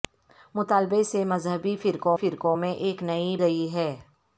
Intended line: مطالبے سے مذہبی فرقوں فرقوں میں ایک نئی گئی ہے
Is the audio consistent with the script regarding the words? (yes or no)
yes